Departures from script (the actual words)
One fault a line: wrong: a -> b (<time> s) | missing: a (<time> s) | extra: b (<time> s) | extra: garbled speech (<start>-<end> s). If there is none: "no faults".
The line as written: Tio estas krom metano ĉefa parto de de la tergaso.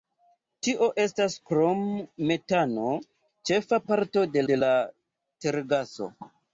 no faults